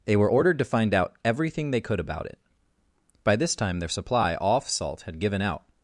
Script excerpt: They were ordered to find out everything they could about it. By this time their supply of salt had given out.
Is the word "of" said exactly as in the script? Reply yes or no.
no